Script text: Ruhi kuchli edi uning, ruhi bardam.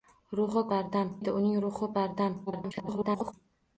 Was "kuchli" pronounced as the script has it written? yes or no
no